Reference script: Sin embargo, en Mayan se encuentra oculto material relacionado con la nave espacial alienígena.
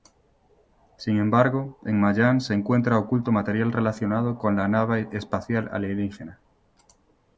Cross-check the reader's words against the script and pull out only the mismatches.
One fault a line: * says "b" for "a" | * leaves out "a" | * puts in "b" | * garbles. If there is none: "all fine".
all fine